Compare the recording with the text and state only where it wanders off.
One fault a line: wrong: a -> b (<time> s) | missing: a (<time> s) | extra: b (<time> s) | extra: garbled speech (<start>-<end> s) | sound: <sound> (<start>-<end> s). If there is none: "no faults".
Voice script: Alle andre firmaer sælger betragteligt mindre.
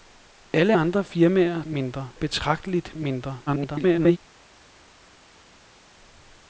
wrong: sælger -> mindre (1.7 s)
extra: garbled speech (3.5-4.2 s)